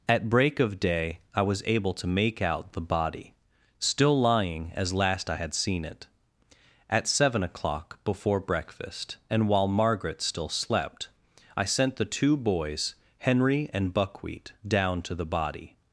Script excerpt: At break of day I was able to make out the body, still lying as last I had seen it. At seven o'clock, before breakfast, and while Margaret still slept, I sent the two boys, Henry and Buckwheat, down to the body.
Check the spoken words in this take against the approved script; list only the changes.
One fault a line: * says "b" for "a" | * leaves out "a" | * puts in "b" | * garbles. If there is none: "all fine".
all fine